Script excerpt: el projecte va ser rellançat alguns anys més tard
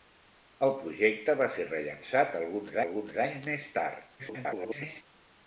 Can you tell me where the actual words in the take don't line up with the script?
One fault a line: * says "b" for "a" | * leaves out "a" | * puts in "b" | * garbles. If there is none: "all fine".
* puts in "alguns"
* garbles